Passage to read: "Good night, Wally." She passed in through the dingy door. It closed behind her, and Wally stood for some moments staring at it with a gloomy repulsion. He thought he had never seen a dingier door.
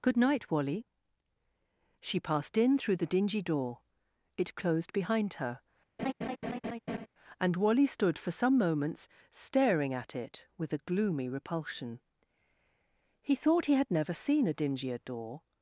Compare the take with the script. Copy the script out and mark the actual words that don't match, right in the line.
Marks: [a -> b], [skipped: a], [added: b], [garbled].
"Good night, Wally." She passed in through the dingy door. It closed behind her, and Wally stood for some moments staring at it with a gloomy repulsion. He thought he had never seen a dingier door.